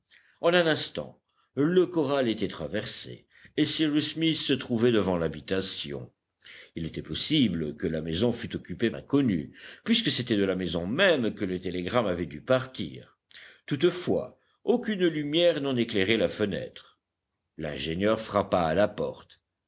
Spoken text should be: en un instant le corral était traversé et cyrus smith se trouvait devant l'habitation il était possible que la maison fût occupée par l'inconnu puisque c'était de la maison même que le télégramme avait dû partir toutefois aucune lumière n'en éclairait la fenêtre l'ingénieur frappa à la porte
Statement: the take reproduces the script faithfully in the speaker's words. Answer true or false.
false